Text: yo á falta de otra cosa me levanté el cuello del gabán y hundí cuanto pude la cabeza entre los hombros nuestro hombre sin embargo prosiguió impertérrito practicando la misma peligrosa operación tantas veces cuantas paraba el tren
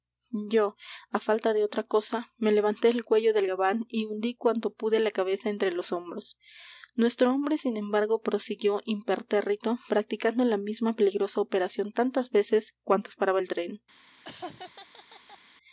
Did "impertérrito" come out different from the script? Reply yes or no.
no